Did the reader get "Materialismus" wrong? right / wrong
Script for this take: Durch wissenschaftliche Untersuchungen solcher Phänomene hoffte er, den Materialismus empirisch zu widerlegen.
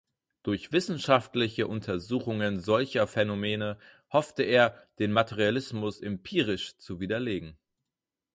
right